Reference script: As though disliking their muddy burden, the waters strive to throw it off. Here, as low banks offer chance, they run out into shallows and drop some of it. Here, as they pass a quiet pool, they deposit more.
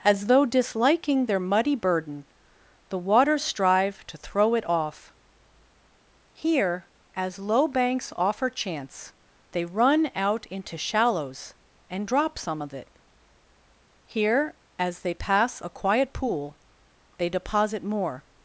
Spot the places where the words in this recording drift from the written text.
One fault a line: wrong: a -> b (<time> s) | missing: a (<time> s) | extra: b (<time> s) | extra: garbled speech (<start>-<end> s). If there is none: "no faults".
no faults